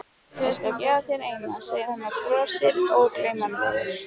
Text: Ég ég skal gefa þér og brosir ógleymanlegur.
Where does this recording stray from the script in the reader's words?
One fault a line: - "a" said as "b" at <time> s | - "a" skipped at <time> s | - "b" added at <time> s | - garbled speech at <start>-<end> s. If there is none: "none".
- "ég" skipped at 0.5 s
- "eina segir hann" added at 1.3 s